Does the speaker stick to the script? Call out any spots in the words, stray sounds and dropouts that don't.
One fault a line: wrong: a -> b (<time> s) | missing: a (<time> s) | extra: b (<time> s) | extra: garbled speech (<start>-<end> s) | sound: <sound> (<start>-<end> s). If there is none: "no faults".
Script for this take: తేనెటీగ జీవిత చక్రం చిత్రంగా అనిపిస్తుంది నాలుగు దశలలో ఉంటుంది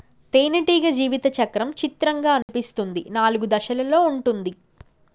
sound: dropout (2.4-2.5 s)